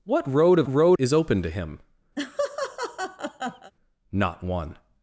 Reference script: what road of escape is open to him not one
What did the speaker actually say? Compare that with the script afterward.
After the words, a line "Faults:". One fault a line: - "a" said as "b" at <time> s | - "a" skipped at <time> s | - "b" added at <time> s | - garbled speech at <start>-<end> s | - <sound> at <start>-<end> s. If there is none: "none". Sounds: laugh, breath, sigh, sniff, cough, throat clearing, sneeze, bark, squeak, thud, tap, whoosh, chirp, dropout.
what road of road is open to him not one
Faults:
- "escape" said as "road" at 0.7 s
- laugh at 2.2-3.7 s